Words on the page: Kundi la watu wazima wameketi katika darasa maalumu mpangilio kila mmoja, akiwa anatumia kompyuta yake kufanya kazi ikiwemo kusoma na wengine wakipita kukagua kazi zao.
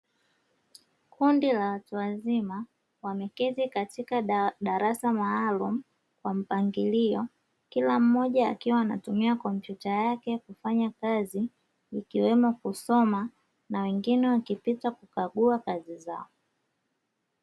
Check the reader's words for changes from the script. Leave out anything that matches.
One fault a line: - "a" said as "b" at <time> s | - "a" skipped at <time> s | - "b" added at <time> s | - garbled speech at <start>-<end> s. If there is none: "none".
- "kwa" added at 6.2 s